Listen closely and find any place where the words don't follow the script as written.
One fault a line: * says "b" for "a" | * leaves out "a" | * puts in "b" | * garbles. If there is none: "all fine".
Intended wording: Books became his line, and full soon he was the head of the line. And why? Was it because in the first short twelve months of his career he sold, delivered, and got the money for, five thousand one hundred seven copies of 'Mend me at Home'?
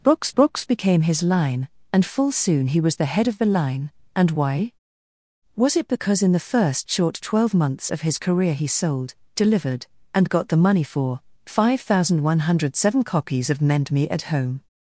* puts in "books"